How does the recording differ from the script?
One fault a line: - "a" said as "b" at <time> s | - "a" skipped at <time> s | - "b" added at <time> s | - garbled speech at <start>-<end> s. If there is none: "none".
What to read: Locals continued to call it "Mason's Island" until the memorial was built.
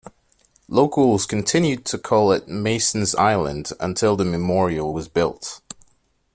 none